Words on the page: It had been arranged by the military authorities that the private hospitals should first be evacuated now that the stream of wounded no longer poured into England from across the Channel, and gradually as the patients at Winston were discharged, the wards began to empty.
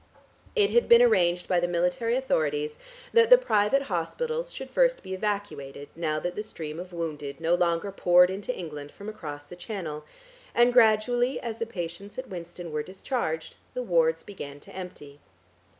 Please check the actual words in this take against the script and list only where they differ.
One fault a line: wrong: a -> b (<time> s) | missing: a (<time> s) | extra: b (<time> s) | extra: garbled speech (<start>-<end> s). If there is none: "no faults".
no faults